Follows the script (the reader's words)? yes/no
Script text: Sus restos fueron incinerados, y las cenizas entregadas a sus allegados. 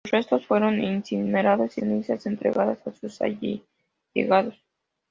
no